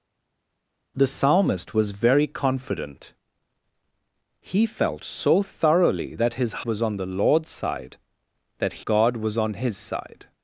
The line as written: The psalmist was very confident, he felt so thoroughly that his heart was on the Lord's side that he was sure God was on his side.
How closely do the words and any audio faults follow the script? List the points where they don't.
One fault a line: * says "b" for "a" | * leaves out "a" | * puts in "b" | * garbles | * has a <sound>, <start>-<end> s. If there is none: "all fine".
* leaves out "heart"
* leaves out "he was sure"